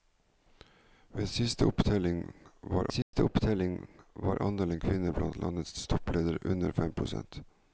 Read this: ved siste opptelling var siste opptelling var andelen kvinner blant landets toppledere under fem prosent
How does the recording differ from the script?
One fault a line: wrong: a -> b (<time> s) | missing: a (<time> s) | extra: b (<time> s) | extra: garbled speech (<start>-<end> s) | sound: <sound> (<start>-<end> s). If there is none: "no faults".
sound: dropout (3.0-3.1 s)